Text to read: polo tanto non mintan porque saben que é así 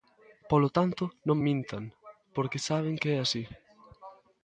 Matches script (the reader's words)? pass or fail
pass